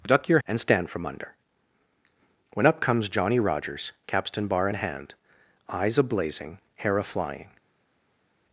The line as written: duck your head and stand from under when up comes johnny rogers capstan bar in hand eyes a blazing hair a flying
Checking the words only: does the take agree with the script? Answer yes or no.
no